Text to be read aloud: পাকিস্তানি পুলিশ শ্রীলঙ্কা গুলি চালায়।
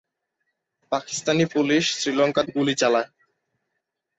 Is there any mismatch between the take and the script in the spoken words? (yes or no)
no